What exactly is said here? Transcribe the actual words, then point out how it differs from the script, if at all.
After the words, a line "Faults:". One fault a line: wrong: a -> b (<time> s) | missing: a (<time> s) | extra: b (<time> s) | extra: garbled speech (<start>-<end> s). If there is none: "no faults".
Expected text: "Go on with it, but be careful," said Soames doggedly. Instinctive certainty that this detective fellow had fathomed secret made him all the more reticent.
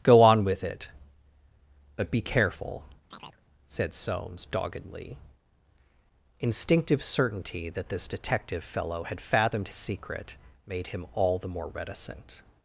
"Go on with it, but be careful," said Soames doggedly. Instinctive certainty that this detective fellow had fathomed secret made him all the more reticent.
Faults:
no faults